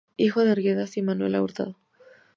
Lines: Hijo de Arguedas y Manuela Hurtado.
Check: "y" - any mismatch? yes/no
no